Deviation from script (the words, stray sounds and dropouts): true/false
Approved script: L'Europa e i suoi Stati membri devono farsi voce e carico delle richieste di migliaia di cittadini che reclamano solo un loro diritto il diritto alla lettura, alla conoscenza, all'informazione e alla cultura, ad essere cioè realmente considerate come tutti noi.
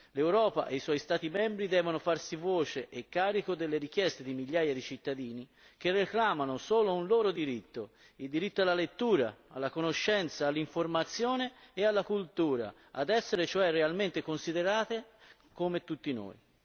false